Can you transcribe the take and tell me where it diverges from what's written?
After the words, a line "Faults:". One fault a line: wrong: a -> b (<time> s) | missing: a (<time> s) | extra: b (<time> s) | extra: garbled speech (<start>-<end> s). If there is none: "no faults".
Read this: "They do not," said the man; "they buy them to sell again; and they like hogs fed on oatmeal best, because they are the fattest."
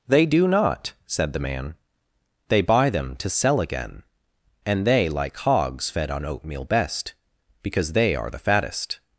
"They do not," said the man; "they buy them to sell again; and they like hogs fed on oatmeal best, because they are the fattest."
Faults:
no faults